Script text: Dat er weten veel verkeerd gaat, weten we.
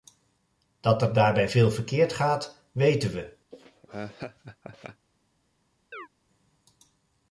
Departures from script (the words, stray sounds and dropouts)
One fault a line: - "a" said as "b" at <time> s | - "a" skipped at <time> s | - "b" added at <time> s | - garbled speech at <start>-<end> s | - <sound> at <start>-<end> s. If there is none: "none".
- "weten" said as "daarbij" at 1.1 s
- laugh at 3.5-5.1 s
- chirp at 5.9-6.1 s